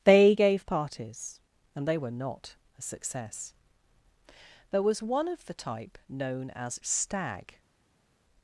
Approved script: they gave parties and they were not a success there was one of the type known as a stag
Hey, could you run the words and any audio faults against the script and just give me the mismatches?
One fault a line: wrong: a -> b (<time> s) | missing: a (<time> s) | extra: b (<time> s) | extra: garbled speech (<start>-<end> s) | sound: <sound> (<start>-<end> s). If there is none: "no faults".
missing: a (6.8 s)